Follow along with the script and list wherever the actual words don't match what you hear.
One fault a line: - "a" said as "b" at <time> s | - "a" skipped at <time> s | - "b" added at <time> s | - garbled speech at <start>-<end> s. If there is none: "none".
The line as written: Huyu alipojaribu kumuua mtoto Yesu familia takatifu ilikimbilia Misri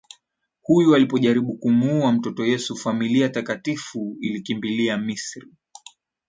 none